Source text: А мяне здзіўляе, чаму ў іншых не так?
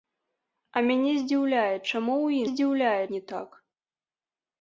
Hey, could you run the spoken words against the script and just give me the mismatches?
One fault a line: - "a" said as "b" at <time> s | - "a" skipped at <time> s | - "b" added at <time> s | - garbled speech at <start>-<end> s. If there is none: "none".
- "іншых" said as "здзіўляе" at 2.5 s